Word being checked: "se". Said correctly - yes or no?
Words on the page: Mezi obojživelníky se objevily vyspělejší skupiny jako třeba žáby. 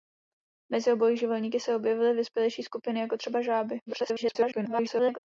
yes